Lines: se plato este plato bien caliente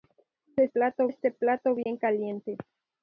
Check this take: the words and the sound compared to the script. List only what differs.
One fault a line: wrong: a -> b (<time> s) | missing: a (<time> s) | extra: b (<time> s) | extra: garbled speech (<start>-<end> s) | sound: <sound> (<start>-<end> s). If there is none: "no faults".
sound: dropout (1.8-1.9 s)